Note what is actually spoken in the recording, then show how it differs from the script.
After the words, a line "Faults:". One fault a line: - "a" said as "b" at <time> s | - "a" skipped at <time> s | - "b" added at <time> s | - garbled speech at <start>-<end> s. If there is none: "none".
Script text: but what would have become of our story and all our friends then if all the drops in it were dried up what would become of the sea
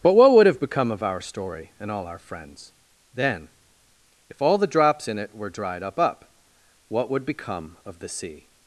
but what would have become of our story and all our friends then if all the drops in it were dried up up what would become of the sea
Faults:
- "up" added at 6.0 s